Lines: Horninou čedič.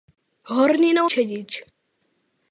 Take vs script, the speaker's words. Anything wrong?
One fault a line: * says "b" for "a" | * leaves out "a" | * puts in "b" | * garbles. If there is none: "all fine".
all fine